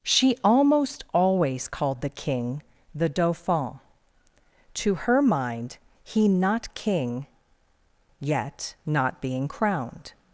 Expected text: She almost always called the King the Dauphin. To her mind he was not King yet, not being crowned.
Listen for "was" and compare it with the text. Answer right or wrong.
wrong